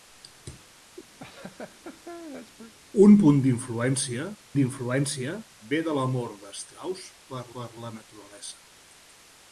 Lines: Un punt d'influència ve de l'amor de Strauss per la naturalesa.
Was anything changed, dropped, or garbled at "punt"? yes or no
no